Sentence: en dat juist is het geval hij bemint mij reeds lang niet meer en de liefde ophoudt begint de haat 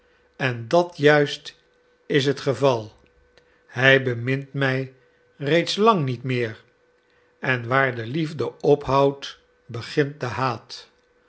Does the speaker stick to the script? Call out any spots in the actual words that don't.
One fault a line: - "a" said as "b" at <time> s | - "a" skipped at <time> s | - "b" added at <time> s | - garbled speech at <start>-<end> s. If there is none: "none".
- "waar" added at 7.7 s